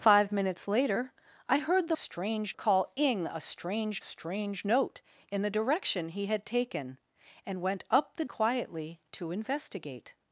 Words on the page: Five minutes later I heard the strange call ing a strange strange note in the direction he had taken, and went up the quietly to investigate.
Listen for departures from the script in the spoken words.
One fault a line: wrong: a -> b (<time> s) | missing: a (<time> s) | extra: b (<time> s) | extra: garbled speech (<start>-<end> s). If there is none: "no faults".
no faults